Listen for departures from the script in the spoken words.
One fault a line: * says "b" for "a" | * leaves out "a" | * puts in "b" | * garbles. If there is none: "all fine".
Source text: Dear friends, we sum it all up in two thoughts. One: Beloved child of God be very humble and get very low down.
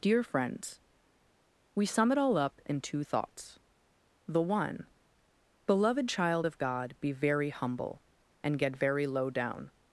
* puts in "The"